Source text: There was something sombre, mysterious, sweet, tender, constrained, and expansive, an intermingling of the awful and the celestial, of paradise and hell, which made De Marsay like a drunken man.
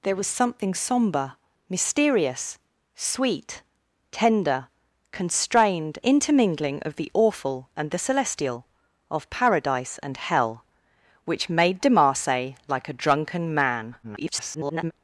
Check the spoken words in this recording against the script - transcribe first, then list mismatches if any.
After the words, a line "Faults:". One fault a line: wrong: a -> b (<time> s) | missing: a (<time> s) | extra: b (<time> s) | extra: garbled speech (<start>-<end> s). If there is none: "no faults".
There was something sombre, mysterious, sweet, tender, constrained, intermingling of the awful and the celestial, of paradise and hell, which made De Marsay like a drunken man. [garbled]
Faults:
missing: and expansive an (6.0 s)
extra: garbled speech (14.0-14.9 s)